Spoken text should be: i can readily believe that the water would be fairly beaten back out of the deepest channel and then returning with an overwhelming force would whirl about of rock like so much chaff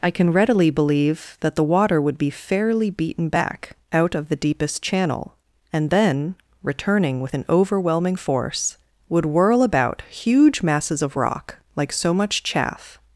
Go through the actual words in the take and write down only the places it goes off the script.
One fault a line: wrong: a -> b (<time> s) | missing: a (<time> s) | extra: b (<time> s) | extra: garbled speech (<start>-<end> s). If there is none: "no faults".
extra: huge masses (10.1 s)